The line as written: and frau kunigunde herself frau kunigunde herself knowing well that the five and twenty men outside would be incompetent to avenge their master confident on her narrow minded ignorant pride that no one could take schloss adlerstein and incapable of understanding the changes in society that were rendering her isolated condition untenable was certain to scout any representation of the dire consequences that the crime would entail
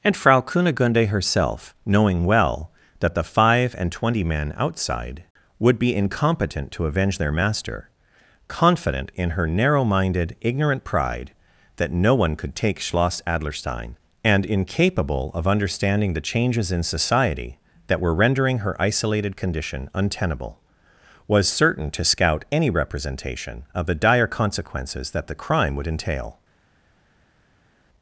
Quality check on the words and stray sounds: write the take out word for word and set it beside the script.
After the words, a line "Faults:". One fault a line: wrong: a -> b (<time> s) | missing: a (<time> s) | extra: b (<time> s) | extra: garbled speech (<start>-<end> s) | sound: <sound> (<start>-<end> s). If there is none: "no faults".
and frau kunigunde herself knowing well that the five and twenty men outside would be incompetent to avenge their master confident in her narrow minded ignorant pride that no one could take schloss adlerstein and incapable of understanding the changes in society that were rendering her isolated condition untenable was certain to scout any representation of the dire consequences that the crime would entail
Faults:
missing: frau kunigunde herself (1.8 s)
wrong: on -> in (9.1 s)